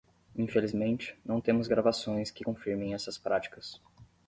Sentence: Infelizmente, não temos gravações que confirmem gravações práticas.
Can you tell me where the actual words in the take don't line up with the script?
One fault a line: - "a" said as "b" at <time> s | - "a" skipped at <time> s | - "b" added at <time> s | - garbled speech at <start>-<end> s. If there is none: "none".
- "gravações" said as "essas" at 2.9 s